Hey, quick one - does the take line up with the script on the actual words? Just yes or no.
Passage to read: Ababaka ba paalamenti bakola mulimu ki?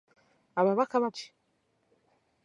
no